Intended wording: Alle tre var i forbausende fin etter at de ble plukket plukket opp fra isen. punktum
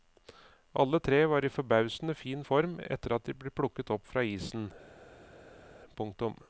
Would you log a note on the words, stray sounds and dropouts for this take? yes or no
yes